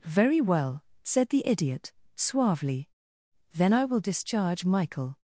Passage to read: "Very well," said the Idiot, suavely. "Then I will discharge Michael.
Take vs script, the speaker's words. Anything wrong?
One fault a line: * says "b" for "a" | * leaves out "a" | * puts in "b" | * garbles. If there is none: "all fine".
all fine